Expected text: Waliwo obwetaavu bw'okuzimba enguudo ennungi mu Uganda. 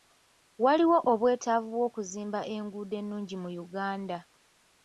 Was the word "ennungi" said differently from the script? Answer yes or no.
no